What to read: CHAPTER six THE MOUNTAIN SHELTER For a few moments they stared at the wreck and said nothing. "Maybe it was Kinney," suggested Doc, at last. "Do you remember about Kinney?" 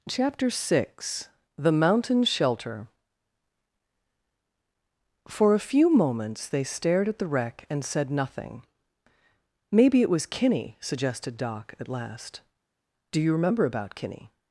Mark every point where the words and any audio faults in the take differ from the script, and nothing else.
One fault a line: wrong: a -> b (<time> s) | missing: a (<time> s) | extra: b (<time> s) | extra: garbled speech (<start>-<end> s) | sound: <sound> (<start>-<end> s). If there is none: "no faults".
no faults